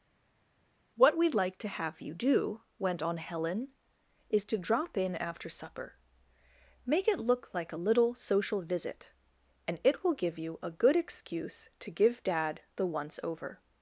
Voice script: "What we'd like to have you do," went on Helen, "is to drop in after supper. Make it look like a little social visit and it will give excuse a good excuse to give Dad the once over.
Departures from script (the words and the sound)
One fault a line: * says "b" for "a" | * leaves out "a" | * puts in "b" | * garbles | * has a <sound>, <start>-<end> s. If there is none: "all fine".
* says "you" for "excuse"